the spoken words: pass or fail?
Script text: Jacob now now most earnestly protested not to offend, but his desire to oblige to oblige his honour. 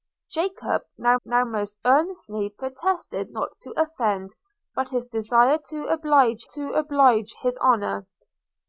pass